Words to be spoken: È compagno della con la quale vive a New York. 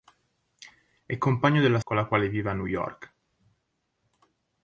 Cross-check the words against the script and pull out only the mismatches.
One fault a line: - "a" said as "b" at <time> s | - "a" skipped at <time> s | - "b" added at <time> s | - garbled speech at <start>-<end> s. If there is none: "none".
none